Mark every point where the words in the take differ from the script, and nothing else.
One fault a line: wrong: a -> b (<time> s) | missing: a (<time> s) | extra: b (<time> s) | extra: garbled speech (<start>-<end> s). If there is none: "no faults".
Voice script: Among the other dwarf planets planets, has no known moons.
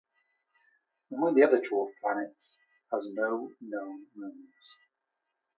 missing: planets (2.6 s)